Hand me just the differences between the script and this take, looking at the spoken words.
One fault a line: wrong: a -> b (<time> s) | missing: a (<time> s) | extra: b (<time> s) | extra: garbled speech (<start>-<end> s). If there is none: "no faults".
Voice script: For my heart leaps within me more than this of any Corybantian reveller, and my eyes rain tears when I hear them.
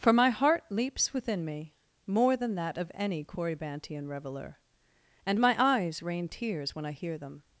wrong: this -> that (2.5 s)